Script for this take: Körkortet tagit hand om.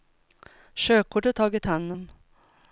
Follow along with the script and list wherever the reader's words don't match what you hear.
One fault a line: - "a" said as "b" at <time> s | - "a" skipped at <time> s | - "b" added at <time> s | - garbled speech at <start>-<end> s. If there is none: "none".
none